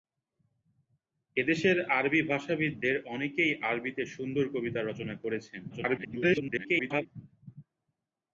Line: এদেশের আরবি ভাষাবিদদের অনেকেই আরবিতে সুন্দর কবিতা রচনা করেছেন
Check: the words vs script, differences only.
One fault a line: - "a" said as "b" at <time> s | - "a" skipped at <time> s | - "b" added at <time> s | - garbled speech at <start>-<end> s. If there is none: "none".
- garbled speech at 5.7-7.1 s